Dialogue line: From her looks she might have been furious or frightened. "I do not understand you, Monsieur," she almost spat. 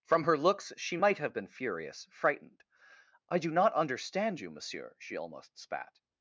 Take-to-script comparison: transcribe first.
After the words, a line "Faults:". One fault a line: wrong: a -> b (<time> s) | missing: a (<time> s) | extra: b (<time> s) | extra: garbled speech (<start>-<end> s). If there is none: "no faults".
From her looks she might have been furious frightened. "I do not understand you, Monsieur," she almost spat.
Faults:
missing: or (2.1 s)